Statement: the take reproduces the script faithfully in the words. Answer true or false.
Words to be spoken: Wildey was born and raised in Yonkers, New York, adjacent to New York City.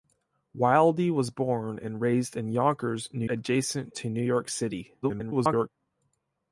false